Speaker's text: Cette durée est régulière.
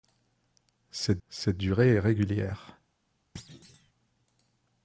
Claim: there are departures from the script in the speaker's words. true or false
true